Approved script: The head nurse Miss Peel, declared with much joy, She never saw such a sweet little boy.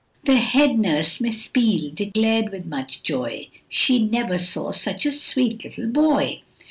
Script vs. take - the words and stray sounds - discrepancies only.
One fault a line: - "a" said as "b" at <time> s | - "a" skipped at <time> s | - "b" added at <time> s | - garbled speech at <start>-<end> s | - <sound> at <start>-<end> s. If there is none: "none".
none